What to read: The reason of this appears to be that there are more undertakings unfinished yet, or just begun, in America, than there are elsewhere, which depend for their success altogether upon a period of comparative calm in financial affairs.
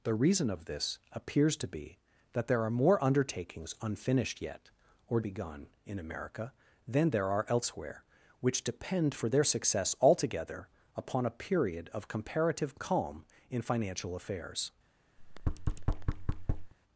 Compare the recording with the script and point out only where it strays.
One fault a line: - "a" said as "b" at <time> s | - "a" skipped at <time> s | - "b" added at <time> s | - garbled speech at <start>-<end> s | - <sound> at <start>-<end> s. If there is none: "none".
- "just" skipped at 5.2 s
- thud at 15.2-16.7 s